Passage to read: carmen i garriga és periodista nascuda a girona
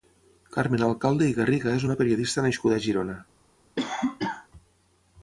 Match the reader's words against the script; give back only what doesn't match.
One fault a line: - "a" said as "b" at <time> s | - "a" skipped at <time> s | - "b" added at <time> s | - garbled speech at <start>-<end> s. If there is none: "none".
- "alcalde" added at 0.8 s
- "una" added at 1.9 s